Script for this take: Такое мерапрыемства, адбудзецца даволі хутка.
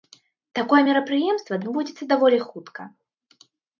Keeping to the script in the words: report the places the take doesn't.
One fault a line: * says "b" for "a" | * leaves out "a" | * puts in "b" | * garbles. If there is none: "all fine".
all fine